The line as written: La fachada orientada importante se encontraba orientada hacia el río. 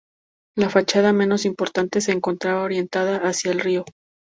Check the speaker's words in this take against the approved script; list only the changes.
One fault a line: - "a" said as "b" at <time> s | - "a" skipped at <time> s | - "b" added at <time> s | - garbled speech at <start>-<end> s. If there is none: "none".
- "orientada" said as "menos" at 1.1 s